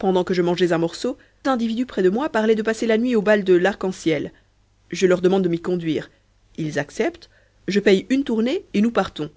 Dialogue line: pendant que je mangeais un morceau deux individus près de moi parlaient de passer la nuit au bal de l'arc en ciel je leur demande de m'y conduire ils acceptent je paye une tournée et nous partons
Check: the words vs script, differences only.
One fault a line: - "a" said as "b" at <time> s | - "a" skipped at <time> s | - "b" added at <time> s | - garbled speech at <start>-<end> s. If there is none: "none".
- "deux" skipped at 1.1 s